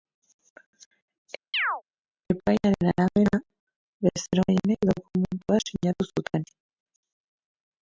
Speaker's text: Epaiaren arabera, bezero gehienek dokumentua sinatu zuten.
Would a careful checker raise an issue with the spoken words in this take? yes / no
no